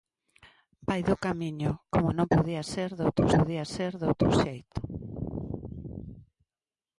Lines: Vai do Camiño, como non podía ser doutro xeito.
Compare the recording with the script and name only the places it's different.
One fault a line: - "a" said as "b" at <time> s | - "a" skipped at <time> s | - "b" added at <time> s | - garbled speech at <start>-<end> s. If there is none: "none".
- "podía ser doutro" added at 3.4 s